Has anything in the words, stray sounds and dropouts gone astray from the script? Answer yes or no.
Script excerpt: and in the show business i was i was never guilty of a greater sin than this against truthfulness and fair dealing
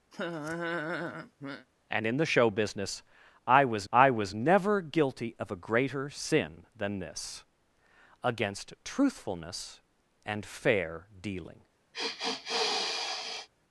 yes